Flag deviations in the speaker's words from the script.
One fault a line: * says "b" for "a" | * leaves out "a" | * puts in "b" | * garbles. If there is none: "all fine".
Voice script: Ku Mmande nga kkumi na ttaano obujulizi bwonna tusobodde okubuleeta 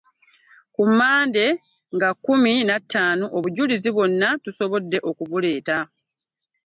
all fine